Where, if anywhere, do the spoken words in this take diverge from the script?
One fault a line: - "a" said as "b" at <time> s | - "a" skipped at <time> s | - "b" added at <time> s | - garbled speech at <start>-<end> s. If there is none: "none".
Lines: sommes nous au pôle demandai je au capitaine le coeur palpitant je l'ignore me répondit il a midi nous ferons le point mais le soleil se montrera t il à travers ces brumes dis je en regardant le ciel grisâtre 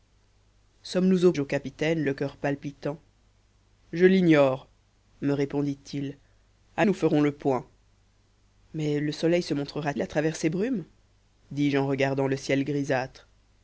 - "pôle demandai" skipped at 1.3 s
- "midi" skipped at 6.8 s
- "t" skipped at 9.9 s